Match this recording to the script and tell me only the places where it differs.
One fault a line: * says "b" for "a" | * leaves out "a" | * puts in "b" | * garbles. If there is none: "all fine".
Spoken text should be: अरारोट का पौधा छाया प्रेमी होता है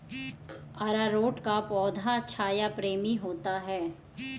all fine